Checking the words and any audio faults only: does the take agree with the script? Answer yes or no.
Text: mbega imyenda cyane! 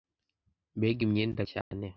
no